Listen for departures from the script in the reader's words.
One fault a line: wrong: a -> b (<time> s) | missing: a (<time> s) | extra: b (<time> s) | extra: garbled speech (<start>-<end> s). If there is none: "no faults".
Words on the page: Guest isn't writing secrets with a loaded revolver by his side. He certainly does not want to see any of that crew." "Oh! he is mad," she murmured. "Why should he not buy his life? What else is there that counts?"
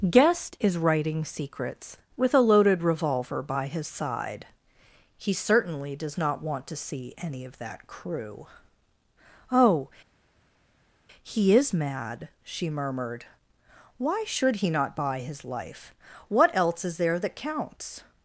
wrong: isn't -> is (0.6 s)